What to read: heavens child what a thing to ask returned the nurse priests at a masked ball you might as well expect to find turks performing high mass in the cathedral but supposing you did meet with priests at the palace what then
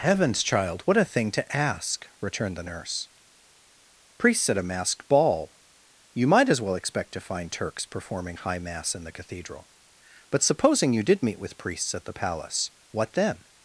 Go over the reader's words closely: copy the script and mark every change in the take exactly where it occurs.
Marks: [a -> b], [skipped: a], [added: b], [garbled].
heavens child what a thing to ask returned the nurse priests at a masked ball you might as well expect to find turks performing high mass in the cathedral but supposing you did meet with priests at the palace what then